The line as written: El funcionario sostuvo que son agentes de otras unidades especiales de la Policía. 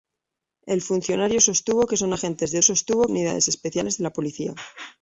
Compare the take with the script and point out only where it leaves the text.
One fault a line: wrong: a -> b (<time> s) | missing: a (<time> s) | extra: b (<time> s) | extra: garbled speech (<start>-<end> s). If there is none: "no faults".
wrong: otras -> sostuvo (2.6 s)